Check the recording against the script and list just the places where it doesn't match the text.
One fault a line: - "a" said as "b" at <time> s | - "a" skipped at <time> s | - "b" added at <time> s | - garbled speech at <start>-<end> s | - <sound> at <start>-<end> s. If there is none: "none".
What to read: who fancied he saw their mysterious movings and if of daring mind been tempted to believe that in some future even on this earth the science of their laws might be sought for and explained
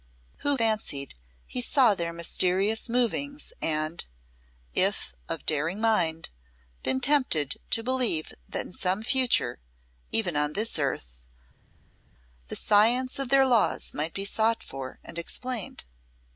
none